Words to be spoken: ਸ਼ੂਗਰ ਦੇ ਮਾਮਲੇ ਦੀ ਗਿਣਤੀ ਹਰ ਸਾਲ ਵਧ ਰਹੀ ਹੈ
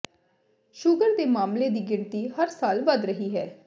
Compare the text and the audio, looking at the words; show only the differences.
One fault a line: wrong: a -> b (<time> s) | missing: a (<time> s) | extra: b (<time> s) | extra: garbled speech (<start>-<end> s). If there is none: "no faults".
no faults